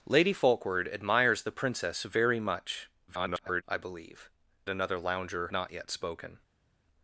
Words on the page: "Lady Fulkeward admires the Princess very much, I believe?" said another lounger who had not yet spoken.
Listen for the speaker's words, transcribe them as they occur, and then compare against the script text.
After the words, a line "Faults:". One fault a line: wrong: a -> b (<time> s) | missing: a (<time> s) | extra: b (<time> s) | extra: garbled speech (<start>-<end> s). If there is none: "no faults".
"Lady Fulkeward admires the Princess very much, [garbled] I believe?" another lounger not yet spoken.
Faults:
extra: garbled speech (3.1-3.6 s)
missing: said (4.3 s)
missing: who had (5.5 s)